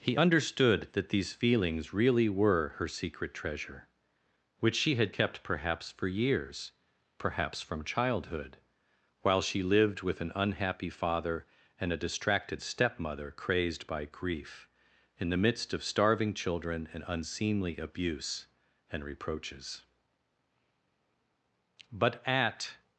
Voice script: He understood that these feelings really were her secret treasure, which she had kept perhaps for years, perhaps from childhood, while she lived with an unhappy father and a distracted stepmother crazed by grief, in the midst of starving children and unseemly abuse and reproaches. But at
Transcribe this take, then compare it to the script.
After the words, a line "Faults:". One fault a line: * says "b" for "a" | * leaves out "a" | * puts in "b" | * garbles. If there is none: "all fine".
He understood that these feelings really were her secret treasure, which she had kept perhaps for years, perhaps from childhood, while she lived with an unhappy father and a distracted stepmother crazed by grief, in the midst of starving children and unseemly abuse and reproaches. But at
Faults:
all fine